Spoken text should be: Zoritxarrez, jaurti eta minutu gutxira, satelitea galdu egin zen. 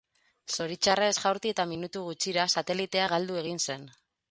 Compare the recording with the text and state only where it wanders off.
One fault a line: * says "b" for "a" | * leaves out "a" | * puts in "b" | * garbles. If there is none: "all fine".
all fine